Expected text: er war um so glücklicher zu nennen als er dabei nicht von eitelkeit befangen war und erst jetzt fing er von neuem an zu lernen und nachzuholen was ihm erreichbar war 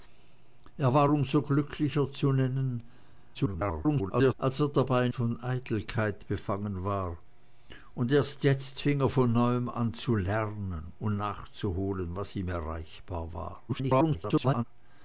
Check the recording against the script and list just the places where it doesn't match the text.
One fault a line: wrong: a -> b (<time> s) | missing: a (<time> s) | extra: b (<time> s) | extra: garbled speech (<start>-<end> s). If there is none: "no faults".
extra: garbled speech (3.3-4.3 s)
missing: nicht (5.1 s)
extra: garbled speech (13.7-14.6 s)